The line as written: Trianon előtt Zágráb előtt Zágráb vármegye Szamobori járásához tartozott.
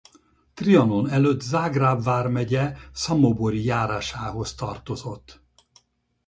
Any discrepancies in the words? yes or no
yes